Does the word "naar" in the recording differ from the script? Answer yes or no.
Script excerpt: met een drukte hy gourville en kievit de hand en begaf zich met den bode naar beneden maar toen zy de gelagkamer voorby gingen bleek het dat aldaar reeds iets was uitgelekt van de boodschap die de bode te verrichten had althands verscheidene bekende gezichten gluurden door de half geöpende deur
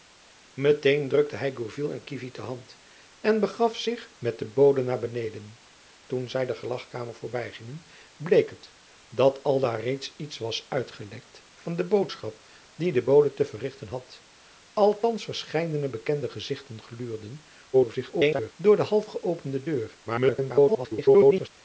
no